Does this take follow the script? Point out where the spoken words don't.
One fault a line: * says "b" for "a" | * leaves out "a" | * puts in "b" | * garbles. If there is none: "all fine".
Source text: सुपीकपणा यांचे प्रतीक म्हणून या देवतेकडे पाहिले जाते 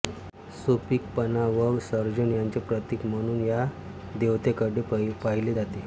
* puts in "व सर्जन"